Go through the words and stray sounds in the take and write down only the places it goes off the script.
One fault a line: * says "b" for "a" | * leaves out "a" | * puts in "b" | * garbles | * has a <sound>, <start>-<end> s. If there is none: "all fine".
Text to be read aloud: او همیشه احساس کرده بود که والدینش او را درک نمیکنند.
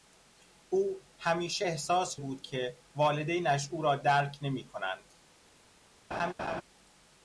* leaves out "کرده"
* has a laugh, 6.1-6.6 s